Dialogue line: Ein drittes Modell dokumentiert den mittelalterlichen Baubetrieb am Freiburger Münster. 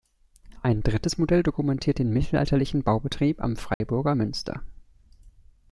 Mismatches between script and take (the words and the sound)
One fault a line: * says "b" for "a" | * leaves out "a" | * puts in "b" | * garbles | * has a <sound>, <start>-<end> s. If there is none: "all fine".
* has a dropout, 3.7-3.8 s